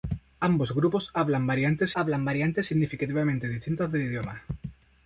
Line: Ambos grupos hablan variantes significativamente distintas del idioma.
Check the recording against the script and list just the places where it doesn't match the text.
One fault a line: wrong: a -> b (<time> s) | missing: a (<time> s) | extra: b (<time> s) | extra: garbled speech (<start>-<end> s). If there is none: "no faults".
extra: hablan variantes (1.9 s)